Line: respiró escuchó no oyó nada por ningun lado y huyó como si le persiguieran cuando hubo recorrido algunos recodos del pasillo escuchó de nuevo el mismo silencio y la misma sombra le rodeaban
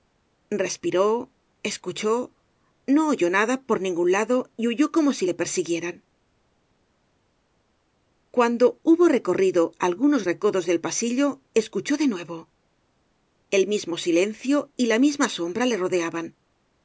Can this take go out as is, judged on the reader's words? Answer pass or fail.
pass